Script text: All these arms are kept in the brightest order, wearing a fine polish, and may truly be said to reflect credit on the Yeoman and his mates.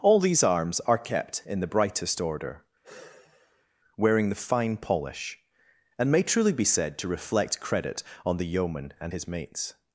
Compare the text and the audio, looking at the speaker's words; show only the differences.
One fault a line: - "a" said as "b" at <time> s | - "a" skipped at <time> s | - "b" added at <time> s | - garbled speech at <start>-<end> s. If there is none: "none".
- "a" said as "the" at 4.3 s